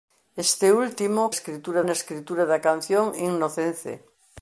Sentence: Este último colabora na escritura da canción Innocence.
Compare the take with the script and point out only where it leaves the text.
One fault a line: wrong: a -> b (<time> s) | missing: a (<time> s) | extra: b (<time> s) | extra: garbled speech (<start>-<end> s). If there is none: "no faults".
wrong: colabora -> escritura (1.4 s)